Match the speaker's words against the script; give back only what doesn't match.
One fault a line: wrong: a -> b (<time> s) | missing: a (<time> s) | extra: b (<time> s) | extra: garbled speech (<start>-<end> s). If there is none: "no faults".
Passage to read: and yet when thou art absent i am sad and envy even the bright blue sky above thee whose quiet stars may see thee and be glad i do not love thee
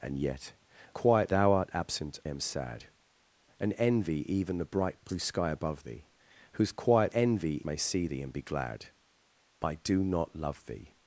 wrong: when -> quiet (0.9 s)
missing: i (2.2 s)
wrong: stars -> envy (7.1 s)